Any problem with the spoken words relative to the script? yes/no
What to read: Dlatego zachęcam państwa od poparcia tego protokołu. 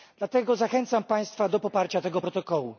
yes